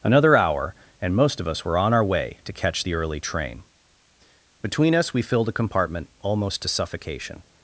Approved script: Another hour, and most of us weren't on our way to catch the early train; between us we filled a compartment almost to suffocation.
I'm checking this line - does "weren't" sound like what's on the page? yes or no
no